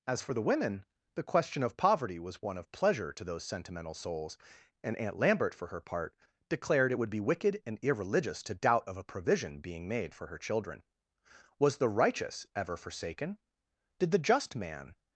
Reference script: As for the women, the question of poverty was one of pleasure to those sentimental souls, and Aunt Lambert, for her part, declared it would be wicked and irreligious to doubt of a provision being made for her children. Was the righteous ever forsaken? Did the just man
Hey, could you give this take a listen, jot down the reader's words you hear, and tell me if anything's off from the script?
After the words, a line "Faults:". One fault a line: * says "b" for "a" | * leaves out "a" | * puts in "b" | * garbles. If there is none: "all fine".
As for the women, the question of poverty was one of pleasure to those sentimental souls, and Aunt Lambert, for her part, declared it would be wicked and irreligious to doubt of a provision being made for her children. Was the righteous ever forsaken? Did the just man
Faults:
all fine